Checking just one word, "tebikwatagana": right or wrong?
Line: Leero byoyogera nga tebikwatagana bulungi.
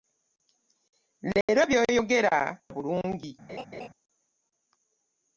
wrong